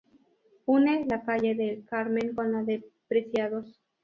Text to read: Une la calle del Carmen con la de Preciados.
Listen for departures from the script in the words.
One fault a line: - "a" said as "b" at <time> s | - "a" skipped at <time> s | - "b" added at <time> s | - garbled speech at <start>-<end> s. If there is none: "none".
none